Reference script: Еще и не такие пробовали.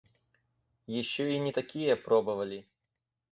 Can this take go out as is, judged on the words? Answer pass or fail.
pass